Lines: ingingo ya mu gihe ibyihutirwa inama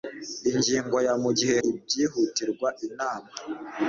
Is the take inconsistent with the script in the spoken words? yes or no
no